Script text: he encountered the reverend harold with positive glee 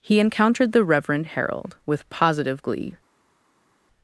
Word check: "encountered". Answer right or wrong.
right